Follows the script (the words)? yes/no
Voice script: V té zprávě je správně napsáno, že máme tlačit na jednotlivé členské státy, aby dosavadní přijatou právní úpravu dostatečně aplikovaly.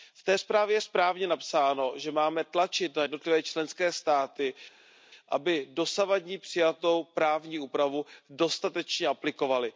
yes